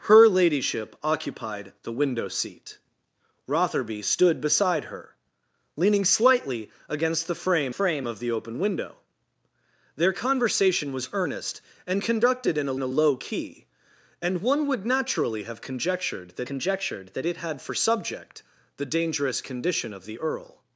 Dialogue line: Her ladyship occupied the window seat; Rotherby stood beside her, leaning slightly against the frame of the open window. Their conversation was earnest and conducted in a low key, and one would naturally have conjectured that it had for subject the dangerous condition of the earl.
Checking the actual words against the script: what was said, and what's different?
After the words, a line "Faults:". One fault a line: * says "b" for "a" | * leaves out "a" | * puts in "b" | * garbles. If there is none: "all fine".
Her ladyship occupied the window seat; Rotherby stood beside her, leaning slightly against the frame frame of the open window. Their conversation was earnest and conducted in a a low key, and one would naturally have conjectured that conjectured that it had for subject the dangerous condition of the earl.
Faults:
* puts in "frame"
* puts in "a"
* puts in "conjectured that"